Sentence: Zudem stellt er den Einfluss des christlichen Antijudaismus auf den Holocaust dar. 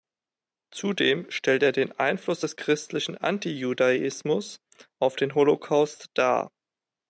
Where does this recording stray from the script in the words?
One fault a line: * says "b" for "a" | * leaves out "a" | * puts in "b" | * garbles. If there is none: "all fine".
all fine